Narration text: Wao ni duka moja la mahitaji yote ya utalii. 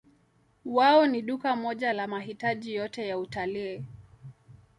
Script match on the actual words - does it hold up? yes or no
yes